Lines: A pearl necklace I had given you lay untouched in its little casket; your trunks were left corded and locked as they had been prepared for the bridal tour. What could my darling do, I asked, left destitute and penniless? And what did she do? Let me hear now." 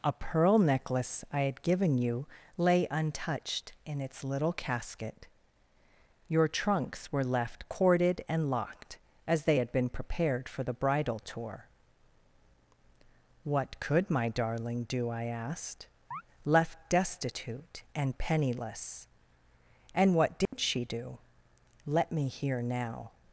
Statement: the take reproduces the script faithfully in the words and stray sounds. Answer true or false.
false